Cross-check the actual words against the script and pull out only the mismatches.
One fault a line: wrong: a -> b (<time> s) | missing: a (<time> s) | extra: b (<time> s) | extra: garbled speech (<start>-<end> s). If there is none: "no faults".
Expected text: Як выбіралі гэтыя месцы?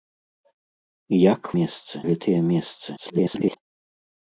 wrong: выбіралі -> месцы (1.6 s)
extra: garbled speech (3.0-3.6 s)